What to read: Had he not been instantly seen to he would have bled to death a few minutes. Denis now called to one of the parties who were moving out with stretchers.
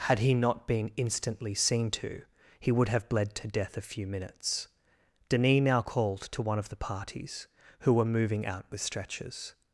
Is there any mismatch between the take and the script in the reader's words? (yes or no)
no